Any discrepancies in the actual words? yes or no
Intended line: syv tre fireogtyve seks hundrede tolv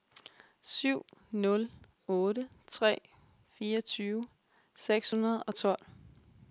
yes